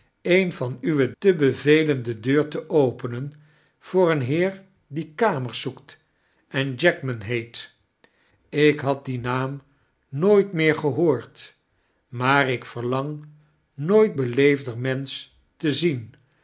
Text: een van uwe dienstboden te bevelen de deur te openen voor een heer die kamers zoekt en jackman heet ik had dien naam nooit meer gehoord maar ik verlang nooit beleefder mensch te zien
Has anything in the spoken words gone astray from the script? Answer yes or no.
yes